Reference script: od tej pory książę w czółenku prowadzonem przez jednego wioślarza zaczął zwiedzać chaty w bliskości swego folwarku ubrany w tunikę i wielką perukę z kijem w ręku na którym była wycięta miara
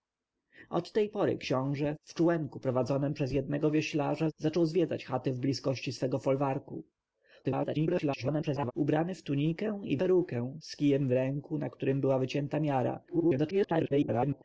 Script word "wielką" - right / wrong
wrong